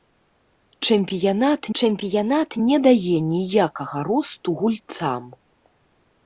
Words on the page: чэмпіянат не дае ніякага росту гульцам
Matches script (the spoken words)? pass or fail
fail